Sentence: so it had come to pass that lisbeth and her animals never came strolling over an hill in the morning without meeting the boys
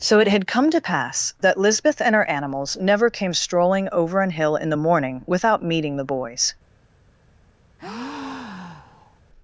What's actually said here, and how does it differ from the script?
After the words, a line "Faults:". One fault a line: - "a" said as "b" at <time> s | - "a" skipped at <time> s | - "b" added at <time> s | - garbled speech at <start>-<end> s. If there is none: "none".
so it had come to pass that lisbeth and her animals never came strolling over an hill in the morning without meeting the boys
Faults:
none